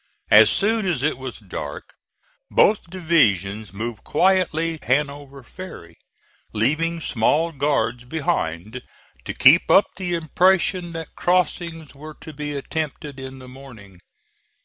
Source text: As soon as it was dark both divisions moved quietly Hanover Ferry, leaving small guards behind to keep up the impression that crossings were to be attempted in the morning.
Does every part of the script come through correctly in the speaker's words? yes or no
yes